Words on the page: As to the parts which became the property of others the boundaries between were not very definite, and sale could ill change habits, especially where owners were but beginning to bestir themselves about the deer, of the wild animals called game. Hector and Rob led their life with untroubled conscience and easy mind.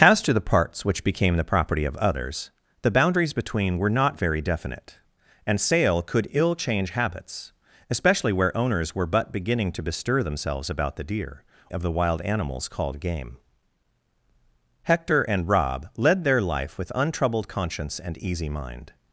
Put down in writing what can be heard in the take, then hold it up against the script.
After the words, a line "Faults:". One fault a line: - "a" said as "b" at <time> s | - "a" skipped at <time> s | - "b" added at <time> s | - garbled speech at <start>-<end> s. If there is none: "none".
As to the parts which became the property of others the boundaries between were not very definite, and sale could ill change habits, especially where owners were but beginning to bestir themselves about the deer, of the wild animals called game. Hector and Rob led their life with untroubled conscience and easy mind.
Faults:
none